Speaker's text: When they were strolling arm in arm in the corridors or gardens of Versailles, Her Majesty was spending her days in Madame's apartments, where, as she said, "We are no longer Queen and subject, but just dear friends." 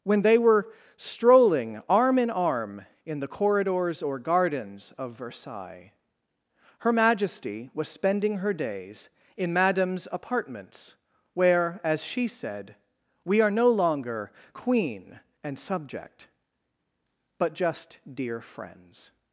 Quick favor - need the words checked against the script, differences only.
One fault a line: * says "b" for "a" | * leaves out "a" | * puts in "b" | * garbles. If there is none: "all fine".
all fine